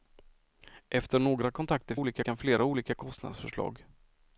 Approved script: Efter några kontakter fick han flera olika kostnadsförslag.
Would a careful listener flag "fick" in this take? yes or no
yes